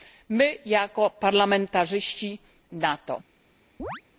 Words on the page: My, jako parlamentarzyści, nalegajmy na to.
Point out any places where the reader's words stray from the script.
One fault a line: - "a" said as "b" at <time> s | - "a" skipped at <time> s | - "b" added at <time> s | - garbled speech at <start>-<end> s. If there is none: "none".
- "nalegajmy" skipped at 2.4 s